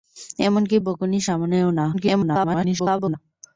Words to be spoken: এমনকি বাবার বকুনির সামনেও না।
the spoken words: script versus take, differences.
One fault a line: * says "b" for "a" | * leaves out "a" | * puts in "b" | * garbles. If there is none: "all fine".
* leaves out "বাবার"
* garbles